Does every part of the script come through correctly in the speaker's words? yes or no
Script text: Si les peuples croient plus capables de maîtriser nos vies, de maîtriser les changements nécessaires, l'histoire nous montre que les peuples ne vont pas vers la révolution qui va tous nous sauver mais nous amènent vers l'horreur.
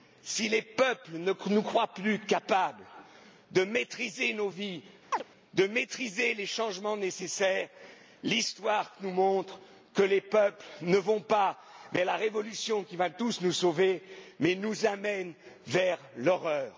no